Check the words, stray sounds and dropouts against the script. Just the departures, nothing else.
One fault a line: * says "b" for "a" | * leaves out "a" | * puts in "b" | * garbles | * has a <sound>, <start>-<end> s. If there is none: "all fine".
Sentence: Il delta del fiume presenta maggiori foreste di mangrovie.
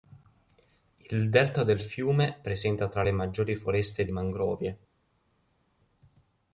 * puts in "tra le"